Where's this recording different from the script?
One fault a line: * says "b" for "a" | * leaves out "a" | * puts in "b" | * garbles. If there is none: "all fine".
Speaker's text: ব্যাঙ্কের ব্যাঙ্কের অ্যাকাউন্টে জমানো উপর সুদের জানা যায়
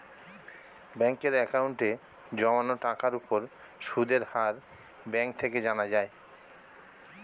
* leaves out "ব্যাঙ্কের"
* puts in "টাকার"
* puts in "হার ব্যাঙ্ক থেকে"